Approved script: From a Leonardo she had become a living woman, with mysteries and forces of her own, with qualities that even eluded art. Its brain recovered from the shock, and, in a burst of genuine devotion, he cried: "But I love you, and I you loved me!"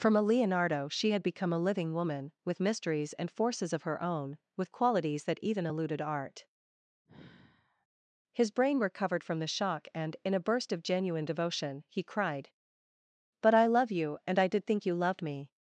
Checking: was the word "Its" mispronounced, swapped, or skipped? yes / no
yes